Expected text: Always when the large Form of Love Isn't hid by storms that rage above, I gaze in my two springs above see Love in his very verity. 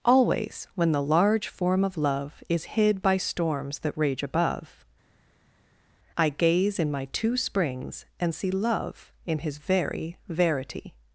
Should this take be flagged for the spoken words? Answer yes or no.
yes